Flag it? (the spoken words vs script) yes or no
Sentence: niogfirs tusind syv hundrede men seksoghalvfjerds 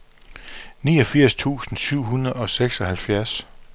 yes